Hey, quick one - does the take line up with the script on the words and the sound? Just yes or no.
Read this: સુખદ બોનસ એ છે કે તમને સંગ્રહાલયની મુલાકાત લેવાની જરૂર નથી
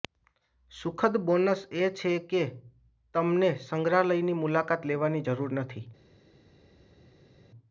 yes